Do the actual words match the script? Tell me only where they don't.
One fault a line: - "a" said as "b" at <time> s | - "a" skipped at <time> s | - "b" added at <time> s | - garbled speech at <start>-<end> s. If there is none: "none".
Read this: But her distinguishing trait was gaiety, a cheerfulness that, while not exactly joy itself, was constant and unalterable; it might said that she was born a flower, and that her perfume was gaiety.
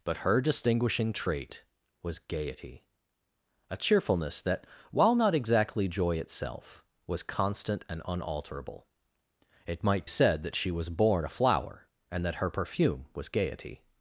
none